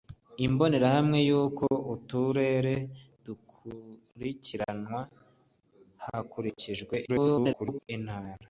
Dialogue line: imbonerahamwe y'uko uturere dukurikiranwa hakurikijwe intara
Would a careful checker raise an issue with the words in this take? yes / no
yes